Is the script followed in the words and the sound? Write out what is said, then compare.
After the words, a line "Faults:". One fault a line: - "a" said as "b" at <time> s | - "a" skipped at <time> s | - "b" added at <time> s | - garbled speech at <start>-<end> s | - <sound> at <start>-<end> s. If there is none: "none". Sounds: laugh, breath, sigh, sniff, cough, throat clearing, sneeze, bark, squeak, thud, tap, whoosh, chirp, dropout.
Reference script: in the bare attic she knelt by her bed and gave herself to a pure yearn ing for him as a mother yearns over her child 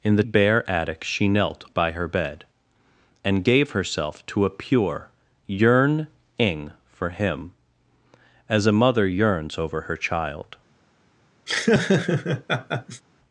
in the bare attic she knelt by her bed and gave herself to a pure yearn ing for him as a mother yearns over her child
Faults:
- laugh at 11.5-13.0 s